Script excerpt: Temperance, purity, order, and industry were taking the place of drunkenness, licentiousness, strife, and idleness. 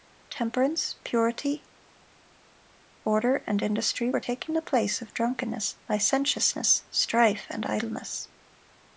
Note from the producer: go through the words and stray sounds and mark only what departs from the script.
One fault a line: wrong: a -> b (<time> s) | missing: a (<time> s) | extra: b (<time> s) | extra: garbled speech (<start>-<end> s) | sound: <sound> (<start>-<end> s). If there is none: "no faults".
no faults